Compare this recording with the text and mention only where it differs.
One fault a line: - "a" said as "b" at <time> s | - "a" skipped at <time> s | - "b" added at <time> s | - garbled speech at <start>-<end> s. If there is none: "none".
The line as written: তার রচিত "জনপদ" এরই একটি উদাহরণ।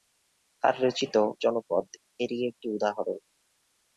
none